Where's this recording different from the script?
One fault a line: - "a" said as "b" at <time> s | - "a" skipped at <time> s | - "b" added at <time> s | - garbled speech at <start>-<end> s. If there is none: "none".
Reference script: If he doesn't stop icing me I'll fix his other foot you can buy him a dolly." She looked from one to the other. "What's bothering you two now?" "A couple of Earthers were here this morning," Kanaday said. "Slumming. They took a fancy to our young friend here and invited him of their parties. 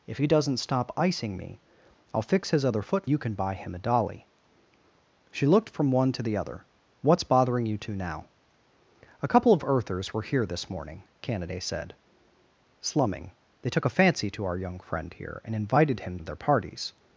none